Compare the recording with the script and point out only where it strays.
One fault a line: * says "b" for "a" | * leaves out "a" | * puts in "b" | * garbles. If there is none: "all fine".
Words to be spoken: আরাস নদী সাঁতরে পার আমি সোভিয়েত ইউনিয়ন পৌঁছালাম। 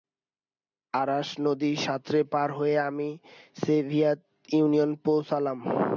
* puts in "হয়ে"